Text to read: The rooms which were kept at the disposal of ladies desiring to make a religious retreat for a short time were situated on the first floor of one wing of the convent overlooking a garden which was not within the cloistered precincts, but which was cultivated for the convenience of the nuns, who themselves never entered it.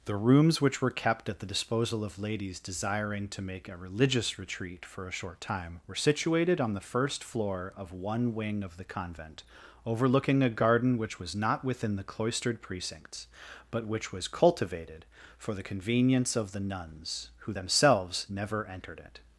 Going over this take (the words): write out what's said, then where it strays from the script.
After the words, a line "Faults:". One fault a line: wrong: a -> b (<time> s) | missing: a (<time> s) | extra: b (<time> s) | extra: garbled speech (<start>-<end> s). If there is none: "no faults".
The rooms which were kept at the disposal of ladies desiring to make a religious retreat for a short time were situated on the first floor of one wing of the convent overlooking a garden which was not within the cloistered precincts, but which was cultivated for the convenience of the nuns, who themselves never entered it.
Faults:
no faults